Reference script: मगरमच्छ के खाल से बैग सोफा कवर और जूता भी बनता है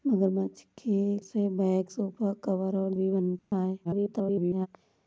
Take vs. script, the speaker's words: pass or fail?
fail